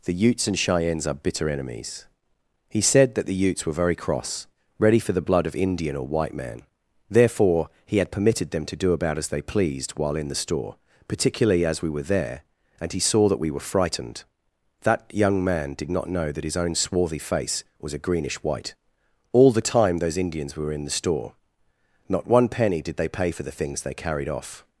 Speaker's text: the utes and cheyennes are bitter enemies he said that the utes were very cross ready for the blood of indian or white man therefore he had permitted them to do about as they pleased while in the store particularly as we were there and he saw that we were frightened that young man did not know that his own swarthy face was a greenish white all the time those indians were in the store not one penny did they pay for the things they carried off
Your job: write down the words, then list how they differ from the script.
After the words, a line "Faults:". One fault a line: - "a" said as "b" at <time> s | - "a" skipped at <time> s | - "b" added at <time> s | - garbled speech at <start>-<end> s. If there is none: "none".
the utes and cheyennes are bitter enemies he said that the utes were very cross ready for the blood of indian or white man therefore he had permitted them to do about as they pleased while in the store particularly as we were there and he saw that we were frightened that young man did not know that his own swarthy face was a greenish white all the time those indians were in the store not one penny did they pay for the things they carried off
Faults:
none